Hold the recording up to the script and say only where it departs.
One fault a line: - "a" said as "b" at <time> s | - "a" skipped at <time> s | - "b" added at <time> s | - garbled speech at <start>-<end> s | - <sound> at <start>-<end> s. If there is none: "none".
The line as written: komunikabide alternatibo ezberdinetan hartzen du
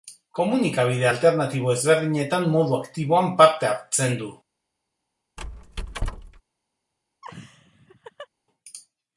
- "modu aktiboan parte" added at 2.5 s
- squeak at 5.4-6.4 s
- laugh at 7.2-8.3 s